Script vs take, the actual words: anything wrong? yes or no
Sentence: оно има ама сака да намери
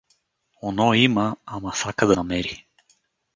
no